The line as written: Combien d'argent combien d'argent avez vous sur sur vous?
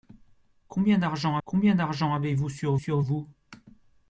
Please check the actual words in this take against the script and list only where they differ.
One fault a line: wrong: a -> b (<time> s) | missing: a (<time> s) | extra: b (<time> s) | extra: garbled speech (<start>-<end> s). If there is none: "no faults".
no faults